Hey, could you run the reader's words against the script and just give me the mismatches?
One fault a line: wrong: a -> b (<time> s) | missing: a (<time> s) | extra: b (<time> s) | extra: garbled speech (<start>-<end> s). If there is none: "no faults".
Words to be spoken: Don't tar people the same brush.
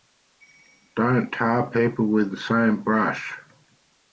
extra: with (2.1 s)